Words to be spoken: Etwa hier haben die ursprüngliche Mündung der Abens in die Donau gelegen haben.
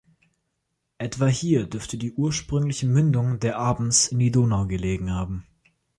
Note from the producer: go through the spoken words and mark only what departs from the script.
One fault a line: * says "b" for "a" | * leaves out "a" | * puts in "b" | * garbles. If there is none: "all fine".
* says "dürfte" for "haben"